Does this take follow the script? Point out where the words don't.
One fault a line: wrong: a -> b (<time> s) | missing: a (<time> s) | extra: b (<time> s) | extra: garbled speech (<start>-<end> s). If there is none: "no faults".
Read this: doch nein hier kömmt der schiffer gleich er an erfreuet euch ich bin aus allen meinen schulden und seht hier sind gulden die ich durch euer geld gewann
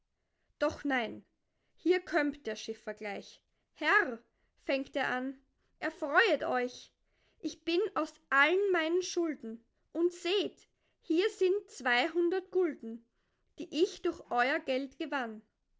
extra: herr fängt (3.7 s)
extra: zweihundert (11.7 s)